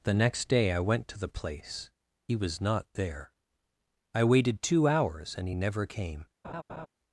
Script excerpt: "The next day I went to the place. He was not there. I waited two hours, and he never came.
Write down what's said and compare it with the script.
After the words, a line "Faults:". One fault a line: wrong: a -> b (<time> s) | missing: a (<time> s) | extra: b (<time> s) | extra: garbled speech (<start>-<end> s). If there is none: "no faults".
"The next day I went to the place. He was not there. I waited two hours, and he never came.
Faults:
no faults